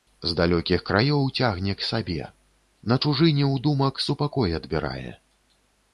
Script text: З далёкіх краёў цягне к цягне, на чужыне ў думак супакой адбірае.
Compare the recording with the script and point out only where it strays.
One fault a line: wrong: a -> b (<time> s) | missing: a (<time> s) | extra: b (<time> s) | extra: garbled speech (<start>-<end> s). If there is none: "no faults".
wrong: цягне -> сабе (1.9 s)